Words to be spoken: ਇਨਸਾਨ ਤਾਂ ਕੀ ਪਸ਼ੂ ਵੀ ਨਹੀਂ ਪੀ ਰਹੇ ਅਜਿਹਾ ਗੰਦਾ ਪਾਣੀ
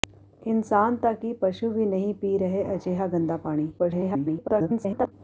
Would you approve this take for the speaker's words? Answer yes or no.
no